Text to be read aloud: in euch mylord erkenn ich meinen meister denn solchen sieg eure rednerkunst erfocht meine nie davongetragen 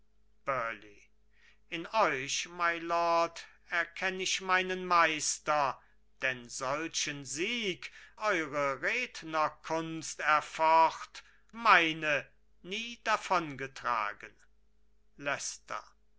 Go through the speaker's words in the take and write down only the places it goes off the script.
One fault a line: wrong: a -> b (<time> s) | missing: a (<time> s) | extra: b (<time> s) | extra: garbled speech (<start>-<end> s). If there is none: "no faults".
no faults